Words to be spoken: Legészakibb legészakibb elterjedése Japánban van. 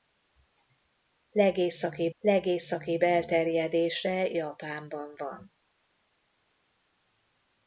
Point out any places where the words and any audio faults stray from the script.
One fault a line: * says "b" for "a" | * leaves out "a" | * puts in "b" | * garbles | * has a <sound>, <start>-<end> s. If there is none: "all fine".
all fine